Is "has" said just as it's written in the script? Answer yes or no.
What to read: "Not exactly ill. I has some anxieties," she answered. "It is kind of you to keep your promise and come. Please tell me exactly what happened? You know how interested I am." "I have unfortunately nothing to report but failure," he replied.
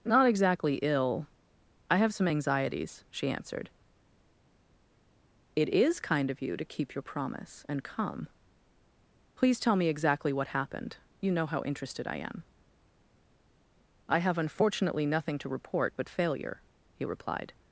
no